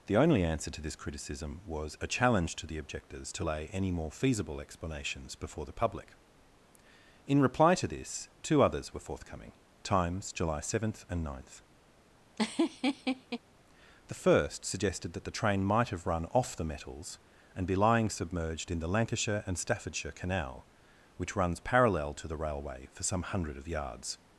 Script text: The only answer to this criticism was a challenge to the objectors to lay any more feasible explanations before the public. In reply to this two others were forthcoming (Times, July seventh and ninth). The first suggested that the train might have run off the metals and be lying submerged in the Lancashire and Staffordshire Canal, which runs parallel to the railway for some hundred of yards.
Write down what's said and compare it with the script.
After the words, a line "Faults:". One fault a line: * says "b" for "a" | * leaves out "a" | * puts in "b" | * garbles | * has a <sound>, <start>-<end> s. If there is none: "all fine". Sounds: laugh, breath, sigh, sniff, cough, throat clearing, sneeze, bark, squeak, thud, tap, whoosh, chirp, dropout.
The only answer to this criticism was a challenge to the objectors to lay any more feasible explanations before the public. In reply to this two others were forthcoming (Times, July seventh and ninth). The first suggested that the train might have run off the metals and be lying submerged in the Lancashire and Staffordshire Canal, which runs parallel to the railway for some hundred of yards.
Faults:
* has a laugh, 12.4-13.4 s